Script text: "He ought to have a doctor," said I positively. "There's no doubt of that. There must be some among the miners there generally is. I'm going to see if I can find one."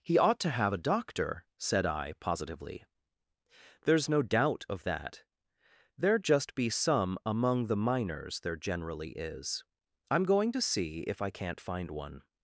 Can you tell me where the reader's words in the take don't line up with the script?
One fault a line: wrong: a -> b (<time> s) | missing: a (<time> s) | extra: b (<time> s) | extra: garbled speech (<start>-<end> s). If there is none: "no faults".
wrong: must -> just (6.2 s)
wrong: can -> can't (11.3 s)